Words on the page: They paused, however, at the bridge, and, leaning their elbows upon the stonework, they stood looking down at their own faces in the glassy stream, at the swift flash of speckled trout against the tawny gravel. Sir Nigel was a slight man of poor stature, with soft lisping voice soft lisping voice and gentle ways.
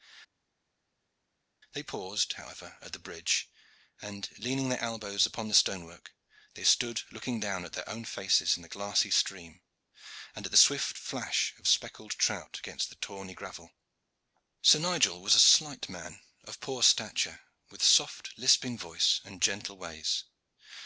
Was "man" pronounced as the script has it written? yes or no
yes